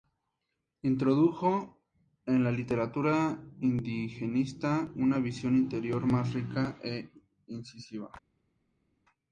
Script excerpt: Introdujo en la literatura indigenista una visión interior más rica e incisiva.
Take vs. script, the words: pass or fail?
pass